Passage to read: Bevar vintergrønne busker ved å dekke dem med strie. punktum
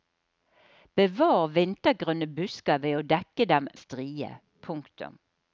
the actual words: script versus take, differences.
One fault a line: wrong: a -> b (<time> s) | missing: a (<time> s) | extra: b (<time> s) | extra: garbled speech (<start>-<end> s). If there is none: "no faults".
missing: med (3.7 s)